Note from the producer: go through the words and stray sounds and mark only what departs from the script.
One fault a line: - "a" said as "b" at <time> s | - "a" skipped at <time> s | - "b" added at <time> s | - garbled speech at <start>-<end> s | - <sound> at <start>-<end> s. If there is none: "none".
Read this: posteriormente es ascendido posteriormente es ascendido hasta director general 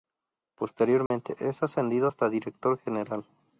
- dropout at 1.1-1.1 s
- "posteriormente es ascendido" skipped at 2.1 s